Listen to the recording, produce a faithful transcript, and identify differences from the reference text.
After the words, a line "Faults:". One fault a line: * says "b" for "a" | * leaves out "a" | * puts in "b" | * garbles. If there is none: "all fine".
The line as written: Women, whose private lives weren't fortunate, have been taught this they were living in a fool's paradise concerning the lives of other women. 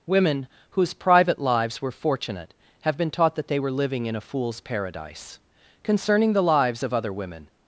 Women, whose private lives were fortunate, have been taught that they were living in a fool's paradise concerning the lives of other women.
Faults:
* says "were" for "weren't"
* says "that" for "this"